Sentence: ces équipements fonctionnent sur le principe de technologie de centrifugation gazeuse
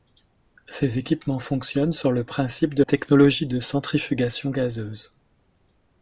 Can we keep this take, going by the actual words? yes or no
yes